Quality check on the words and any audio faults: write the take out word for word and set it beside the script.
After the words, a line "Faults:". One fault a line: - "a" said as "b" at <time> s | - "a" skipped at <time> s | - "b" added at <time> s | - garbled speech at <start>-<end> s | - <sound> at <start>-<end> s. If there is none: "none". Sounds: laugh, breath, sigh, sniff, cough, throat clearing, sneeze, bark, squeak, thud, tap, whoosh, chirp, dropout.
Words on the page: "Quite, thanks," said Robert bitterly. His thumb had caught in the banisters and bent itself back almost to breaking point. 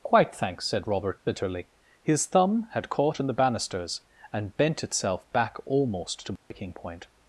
"Quite, thanks," said Robert bitterly. His thumb had caught in the banisters and bent itself back almost to breaking point.
Faults:
- dropout at 6.4-6.5 s